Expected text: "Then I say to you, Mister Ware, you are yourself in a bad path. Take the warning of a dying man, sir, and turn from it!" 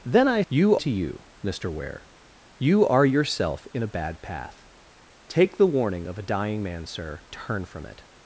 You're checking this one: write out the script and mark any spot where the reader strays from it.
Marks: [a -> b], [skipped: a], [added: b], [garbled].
"Then I [say -> you] to you, Mister Ware, you are yourself in a bad path. Take the warning of a dying man, sir, [skipped: and] turn from it!"